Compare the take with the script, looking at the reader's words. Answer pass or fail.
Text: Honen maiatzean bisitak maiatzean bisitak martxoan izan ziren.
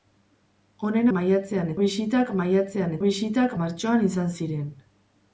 pass